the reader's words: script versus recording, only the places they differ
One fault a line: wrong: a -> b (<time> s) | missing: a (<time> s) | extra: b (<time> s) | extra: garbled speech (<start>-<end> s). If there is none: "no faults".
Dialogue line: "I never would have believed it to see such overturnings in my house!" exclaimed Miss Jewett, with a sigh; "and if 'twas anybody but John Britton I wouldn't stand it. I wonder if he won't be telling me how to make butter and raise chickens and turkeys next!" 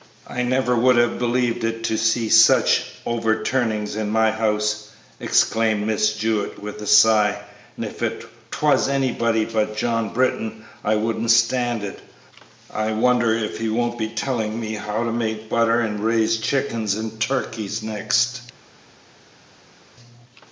no faults